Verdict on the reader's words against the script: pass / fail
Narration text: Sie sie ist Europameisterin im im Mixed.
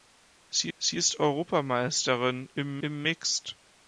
pass